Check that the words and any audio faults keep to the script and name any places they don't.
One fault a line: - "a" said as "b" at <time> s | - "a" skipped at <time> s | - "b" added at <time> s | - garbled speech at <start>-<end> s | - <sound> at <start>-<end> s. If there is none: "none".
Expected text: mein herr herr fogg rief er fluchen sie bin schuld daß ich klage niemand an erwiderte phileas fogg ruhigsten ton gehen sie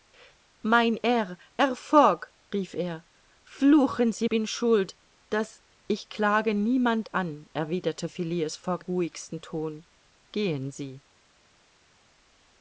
none